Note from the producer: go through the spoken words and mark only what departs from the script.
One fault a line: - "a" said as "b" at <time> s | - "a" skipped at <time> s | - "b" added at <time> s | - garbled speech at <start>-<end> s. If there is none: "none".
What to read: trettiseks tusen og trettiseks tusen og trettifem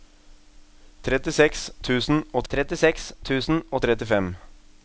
none